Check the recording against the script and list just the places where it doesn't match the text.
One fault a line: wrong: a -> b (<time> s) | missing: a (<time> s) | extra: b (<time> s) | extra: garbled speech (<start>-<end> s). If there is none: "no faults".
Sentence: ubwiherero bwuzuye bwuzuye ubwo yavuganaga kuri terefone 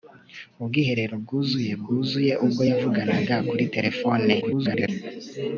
extra: garbled speech (4.4-4.9 s)